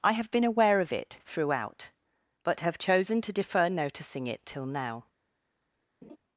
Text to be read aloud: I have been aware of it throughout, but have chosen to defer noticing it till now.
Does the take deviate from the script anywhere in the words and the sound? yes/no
yes